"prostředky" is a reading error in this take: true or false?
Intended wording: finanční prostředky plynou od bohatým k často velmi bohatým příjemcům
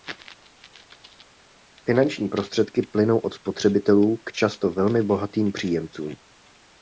false